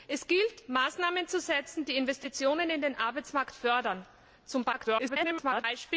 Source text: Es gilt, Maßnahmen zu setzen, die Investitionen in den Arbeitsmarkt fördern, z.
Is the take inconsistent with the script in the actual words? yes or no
yes